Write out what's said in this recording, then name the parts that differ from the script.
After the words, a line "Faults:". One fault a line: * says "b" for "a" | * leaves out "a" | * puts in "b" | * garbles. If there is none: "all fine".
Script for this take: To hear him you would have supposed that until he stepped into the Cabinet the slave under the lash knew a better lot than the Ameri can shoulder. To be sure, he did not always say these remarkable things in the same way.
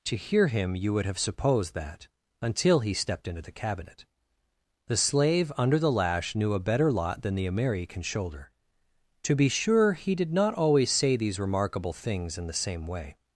To hear him you would have supposed that until he stepped into the Cabinet the slave under the lash knew a better lot than the Ameri can shoulder. To be sure, he did not always say these remarkable things in the same way.
Faults:
all fine